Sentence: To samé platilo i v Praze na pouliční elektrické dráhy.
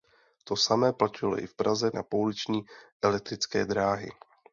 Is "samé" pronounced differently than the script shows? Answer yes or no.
no